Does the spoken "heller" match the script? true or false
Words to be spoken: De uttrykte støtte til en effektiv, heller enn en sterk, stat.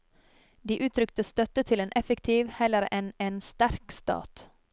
true